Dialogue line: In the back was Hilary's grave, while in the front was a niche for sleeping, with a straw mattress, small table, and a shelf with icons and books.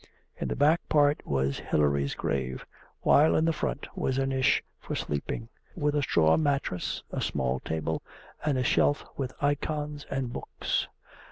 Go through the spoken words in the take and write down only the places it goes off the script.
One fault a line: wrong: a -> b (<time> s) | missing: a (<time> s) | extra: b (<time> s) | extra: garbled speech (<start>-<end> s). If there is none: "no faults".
extra: part (0.9 s)
extra: a (7.1 s)